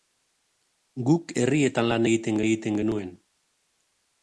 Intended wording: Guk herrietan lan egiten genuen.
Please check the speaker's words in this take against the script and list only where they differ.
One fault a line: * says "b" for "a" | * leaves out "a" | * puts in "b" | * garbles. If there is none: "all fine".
* puts in "egiten"